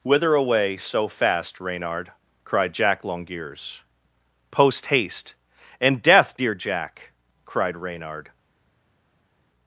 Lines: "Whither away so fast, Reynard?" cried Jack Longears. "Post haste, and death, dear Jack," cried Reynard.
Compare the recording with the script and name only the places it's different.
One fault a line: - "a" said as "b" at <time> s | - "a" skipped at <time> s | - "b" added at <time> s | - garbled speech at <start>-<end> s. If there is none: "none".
none